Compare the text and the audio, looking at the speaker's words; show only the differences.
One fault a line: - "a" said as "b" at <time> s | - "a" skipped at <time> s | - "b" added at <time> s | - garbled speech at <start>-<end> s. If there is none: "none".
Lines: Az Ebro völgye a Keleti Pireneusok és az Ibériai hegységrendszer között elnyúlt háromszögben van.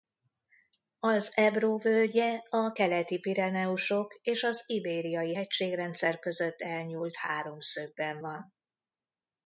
none